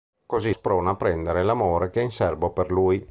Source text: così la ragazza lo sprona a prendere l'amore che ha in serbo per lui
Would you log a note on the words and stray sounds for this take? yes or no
yes